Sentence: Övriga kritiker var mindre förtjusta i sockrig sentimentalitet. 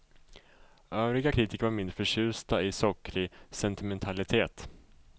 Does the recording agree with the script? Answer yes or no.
yes